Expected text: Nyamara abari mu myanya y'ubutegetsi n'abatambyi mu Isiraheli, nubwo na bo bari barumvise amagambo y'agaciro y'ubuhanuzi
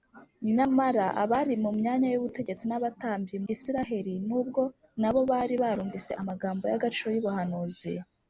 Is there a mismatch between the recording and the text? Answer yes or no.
yes